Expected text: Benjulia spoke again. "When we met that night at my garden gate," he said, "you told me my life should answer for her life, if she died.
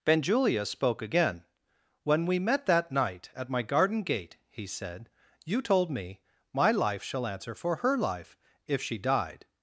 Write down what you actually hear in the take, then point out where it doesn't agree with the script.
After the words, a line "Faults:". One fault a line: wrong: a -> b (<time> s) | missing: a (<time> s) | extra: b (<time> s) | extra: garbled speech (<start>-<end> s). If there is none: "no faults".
Benjulia spoke again. "When we met that night at my garden gate," he said, "you told me my life shall answer for her life, if she died.
Faults:
wrong: should -> shall (7.0 s)